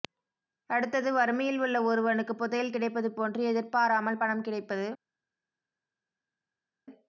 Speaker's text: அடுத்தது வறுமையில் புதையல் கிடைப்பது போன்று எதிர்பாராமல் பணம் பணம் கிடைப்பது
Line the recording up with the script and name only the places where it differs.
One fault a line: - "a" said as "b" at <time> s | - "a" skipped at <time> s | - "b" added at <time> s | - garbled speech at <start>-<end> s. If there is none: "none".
- "உள்ள ஒருவனுக்கு" added at 1.6 s
- "பணம்" skipped at 4.5 s